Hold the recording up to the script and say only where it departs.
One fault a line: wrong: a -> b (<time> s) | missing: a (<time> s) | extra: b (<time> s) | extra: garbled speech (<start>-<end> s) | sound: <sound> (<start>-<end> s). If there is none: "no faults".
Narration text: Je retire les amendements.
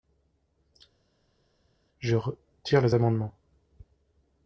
no faults